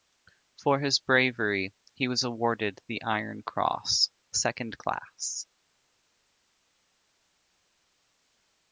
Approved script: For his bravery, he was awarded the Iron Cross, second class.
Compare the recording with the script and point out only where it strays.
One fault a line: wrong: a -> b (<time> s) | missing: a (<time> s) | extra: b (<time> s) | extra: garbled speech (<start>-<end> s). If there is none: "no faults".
no faults